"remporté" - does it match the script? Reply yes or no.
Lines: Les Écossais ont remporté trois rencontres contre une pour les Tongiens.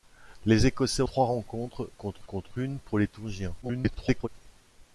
no